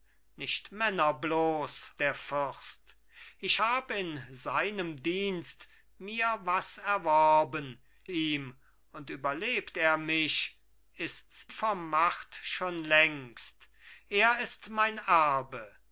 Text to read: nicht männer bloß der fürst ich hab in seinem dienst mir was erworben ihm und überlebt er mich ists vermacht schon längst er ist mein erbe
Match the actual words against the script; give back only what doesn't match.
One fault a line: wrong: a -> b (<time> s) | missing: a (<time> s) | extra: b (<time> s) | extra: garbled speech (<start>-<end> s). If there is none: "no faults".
no faults